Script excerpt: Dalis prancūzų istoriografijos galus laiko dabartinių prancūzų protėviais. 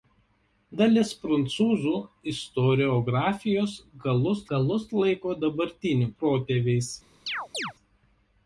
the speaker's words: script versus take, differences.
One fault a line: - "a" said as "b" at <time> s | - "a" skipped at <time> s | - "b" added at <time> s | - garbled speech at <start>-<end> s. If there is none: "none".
- "galus" added at 4.5 s
- "prancūzų" skipped at 6.1 s